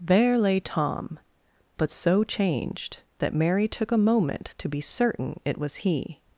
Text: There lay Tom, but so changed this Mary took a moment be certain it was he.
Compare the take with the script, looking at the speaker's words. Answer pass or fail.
fail